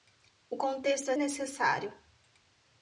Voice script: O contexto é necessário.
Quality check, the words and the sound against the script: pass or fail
pass